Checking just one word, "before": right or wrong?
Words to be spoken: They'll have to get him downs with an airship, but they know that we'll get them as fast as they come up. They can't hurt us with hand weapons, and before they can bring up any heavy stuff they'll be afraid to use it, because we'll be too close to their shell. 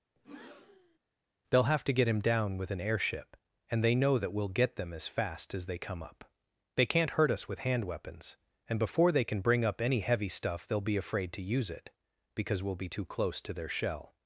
right